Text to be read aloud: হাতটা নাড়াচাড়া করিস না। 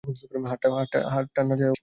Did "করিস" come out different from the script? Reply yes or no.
yes